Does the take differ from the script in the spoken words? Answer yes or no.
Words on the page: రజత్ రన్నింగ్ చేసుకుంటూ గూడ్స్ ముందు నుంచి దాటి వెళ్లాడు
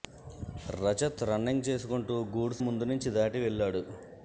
no